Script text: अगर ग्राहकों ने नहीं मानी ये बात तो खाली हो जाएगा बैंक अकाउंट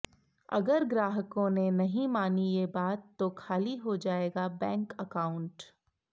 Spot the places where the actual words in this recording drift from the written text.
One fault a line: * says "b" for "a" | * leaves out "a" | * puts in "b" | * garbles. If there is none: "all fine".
all fine